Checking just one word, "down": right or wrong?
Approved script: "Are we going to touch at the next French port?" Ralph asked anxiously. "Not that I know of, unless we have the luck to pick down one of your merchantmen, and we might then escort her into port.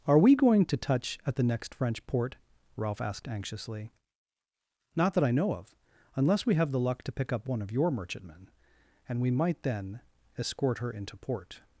wrong